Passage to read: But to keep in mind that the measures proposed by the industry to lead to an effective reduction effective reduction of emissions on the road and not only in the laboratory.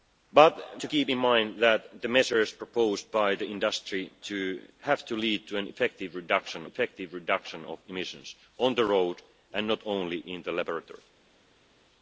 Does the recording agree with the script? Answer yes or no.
yes